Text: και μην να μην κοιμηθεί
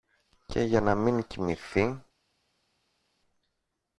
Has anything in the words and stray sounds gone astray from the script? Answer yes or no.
yes